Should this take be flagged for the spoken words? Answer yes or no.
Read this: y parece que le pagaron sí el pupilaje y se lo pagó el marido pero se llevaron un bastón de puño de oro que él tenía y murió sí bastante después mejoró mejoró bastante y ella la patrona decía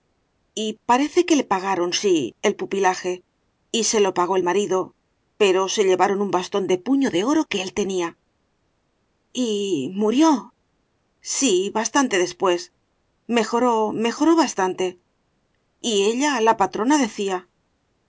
no